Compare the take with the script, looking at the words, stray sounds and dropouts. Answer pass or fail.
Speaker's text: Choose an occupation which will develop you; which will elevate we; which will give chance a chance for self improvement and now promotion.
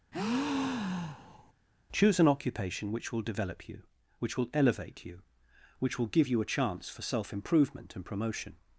fail